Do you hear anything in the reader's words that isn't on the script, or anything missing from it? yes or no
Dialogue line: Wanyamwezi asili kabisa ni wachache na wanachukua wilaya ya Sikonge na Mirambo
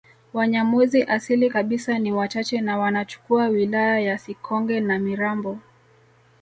no